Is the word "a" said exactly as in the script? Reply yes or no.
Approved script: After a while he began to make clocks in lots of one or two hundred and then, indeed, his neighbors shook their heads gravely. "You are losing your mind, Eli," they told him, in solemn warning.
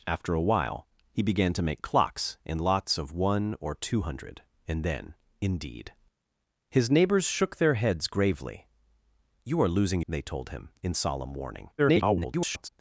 yes